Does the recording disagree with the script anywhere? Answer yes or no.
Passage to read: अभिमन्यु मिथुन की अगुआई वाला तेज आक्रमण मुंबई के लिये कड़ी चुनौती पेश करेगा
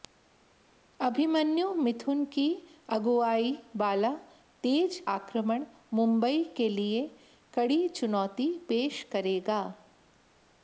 no